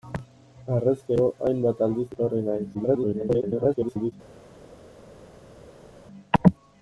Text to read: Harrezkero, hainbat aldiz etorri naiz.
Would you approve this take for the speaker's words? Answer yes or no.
no